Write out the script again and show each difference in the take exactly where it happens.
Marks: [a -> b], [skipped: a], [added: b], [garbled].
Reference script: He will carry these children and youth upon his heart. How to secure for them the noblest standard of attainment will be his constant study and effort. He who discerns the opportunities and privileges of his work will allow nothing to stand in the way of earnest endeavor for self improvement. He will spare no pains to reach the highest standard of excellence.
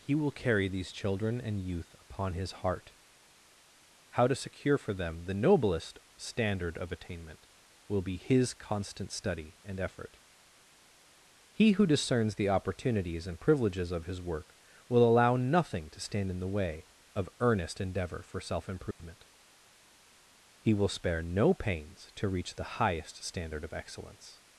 He will carry these children and youth upon his heart. How to secure for them the noblest standard of attainment will be his constant study and effort. He who discerns the opportunities and privileges of his work will allow nothing to stand in the way of earnest endeavor for self improvement. He will spare no pains to reach the highest standard of excellence.